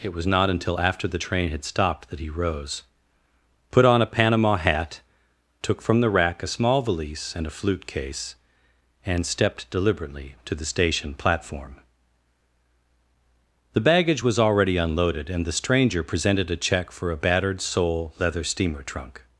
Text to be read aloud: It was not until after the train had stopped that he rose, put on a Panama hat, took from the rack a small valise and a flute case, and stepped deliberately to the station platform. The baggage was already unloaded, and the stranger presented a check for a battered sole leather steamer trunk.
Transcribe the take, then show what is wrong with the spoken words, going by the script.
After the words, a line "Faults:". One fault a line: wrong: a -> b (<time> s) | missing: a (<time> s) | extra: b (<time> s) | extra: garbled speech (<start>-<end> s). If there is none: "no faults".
It was not until after the train had stopped that he rose, put on a Panama hat, took from the rack a small valise and a flute case, and stepped deliberately to the station platform. The baggage was already unloaded, and the stranger presented a check for a battered sole leather steamer trunk.
Faults:
no faults